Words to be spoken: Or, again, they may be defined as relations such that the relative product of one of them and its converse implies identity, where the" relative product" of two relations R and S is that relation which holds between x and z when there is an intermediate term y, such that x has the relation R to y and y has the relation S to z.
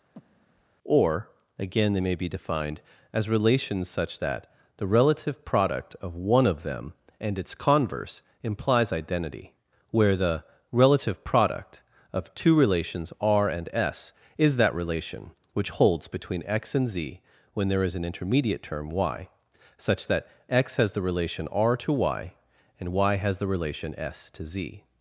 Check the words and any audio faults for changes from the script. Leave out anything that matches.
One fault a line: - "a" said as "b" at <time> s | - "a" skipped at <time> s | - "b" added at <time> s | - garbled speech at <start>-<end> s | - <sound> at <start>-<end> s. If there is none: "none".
- breath at 0.1-0.7 s